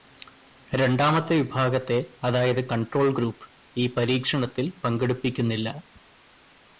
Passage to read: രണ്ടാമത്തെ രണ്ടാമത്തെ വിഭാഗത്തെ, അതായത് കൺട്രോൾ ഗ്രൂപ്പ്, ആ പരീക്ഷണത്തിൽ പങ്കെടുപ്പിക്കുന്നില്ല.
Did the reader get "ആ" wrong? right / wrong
wrong